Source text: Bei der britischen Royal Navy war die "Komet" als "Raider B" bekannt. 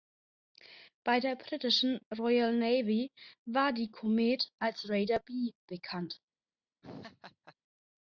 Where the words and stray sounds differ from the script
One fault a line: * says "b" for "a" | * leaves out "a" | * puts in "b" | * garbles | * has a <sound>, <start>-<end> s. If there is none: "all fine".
* has a laugh, 6.8-7.5 s